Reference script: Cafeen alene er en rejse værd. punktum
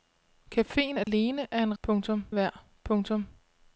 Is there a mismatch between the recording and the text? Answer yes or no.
yes